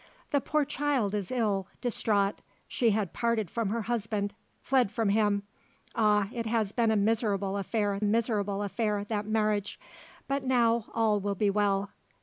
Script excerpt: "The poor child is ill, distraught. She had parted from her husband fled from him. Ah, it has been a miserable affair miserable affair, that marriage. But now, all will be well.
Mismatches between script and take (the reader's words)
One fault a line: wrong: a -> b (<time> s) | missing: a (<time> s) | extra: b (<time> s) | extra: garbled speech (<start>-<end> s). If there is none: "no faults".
no faults